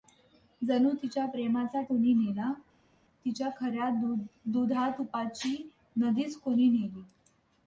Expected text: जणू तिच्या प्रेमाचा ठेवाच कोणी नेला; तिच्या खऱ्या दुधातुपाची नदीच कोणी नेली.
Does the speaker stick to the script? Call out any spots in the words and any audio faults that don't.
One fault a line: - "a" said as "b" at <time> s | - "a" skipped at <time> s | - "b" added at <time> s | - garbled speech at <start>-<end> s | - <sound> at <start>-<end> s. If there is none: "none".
- "ठेवाच" skipped at 1.8 s